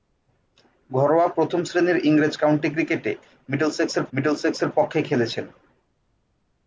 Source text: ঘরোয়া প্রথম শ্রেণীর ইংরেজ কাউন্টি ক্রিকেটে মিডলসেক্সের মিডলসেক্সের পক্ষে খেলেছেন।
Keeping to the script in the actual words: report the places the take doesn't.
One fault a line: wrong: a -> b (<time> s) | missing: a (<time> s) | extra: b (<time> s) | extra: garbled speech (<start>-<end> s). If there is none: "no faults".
no faults